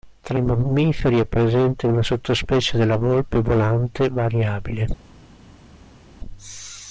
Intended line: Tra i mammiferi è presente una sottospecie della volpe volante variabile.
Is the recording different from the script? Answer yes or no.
no